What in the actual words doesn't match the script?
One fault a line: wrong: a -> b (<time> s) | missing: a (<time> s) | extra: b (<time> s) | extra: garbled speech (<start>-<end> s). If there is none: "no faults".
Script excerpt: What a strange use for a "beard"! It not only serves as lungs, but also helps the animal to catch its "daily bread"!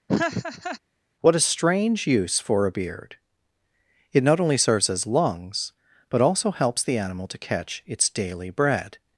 no faults